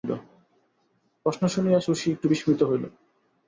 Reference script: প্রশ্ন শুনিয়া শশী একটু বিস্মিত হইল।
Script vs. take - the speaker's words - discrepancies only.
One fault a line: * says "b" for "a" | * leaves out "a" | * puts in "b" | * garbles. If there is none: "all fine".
all fine